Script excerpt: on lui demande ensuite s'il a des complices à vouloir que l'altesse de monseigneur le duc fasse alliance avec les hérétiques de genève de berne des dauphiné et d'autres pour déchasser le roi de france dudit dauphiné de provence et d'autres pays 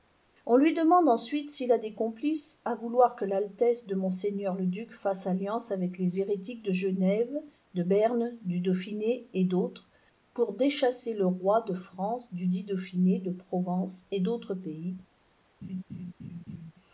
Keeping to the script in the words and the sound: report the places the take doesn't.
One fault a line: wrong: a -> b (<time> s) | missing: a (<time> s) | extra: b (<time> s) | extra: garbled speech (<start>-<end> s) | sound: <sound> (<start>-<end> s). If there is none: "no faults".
wrong: des -> du (8.4 s)
sound: laugh (15.6-16.7 s)